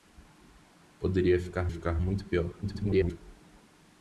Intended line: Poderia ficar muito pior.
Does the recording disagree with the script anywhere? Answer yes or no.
yes